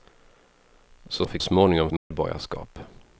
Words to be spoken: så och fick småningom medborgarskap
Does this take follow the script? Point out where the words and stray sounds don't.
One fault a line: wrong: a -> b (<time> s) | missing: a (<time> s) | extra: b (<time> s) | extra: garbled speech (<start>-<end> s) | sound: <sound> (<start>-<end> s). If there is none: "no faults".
sound: dropout (2.0-2.1 s)